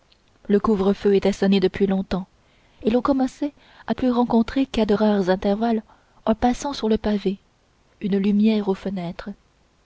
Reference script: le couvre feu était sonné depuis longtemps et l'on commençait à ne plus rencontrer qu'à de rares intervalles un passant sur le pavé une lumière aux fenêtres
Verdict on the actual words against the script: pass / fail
fail